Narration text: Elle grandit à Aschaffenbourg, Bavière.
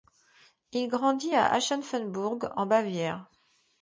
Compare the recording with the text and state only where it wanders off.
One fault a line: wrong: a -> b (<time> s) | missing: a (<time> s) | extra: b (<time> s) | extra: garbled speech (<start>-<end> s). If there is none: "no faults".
wrong: Elle -> Il (0.7 s)
extra: en (2.6 s)